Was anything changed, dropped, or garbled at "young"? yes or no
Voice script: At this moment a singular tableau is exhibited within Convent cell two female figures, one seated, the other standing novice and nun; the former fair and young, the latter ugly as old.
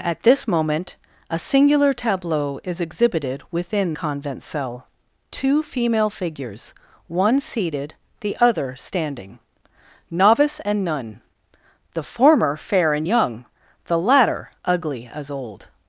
no